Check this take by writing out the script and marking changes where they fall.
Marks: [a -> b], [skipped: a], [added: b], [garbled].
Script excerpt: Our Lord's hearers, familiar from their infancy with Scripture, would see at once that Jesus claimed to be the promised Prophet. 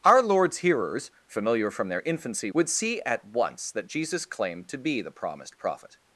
Our Lord's hearers, familiar from their infancy [skipped: with Scripture,] would see at once that Jesus claimed to be the promised Prophet.